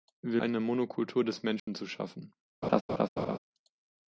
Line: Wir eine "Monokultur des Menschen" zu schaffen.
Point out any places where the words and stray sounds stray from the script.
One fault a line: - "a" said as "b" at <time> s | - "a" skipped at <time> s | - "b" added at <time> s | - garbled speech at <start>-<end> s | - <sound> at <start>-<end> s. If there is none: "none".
- dropout at 1.6-1.7 s
- laugh at 2.6-3.4 s